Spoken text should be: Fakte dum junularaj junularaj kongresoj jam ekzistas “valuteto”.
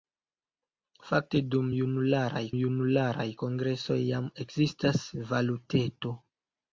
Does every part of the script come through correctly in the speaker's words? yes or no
yes